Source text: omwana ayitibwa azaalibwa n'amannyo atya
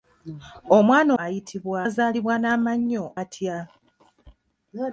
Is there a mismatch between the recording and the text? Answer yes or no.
no